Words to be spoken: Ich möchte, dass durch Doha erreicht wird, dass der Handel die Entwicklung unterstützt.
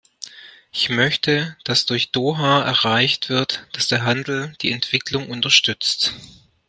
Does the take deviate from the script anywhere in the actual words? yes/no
no